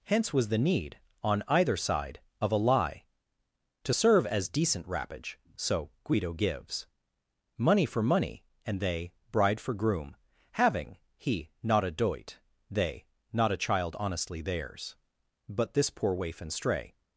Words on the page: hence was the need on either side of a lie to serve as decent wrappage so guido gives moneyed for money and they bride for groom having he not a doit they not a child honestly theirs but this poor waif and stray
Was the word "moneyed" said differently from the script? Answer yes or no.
yes